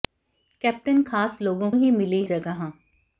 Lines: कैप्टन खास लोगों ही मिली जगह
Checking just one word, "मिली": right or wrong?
right